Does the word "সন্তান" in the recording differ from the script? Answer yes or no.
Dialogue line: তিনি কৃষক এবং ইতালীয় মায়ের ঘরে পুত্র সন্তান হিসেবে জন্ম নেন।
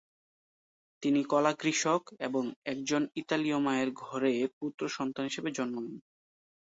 no